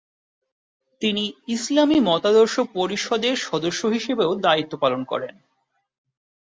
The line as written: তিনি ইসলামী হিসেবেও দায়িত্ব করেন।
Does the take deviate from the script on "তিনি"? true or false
false